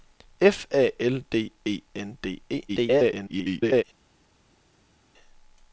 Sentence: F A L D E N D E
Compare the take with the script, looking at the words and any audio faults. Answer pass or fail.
fail